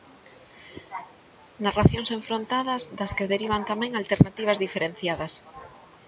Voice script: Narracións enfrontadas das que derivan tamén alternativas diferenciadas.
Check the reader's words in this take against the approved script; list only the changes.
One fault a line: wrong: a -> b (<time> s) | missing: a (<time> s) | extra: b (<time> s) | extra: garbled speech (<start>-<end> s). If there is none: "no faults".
no faults